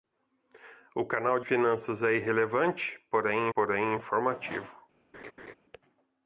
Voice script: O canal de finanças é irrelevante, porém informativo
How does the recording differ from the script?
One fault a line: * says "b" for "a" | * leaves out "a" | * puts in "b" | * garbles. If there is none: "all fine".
* leaves out "de"
* puts in "porém"